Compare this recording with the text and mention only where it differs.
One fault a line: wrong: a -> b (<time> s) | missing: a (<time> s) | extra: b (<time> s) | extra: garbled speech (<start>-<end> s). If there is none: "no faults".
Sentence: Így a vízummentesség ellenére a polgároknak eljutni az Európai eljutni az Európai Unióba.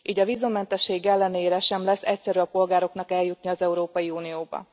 wrong: a polgároknak eljutni az Európai -> sem lesz egyszerű a polgároknak (1.6 s)